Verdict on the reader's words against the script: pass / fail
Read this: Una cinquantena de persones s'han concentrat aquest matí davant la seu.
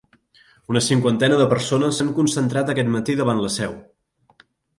pass